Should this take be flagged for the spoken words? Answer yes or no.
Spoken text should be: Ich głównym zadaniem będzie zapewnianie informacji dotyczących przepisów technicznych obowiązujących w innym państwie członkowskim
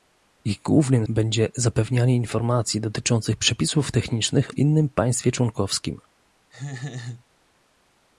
yes